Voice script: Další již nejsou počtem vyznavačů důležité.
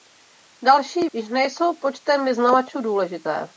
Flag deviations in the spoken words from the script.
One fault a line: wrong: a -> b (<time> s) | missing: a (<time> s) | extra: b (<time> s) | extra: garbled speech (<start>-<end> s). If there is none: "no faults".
no faults